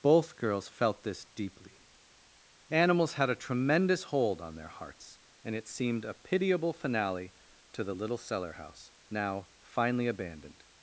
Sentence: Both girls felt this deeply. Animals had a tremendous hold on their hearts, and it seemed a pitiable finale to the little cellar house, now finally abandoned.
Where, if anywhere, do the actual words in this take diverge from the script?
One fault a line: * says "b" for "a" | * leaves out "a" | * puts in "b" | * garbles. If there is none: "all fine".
all fine